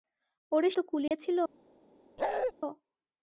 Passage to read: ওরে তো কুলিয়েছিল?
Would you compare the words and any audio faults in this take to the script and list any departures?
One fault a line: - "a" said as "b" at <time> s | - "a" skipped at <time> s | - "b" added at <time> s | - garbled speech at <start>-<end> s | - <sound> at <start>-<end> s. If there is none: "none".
- dropout at 1.1-1.1 s
- bark at 2.2-2.5 s